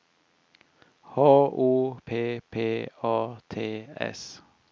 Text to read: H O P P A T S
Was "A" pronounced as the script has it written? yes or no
yes